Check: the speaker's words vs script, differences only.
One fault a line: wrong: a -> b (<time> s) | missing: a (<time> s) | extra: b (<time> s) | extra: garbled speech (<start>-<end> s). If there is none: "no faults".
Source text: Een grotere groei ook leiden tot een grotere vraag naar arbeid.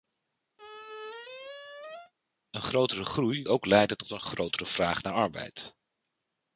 no faults